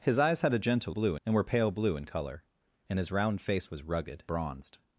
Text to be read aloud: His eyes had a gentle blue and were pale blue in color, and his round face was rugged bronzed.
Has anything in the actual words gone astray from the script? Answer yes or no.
no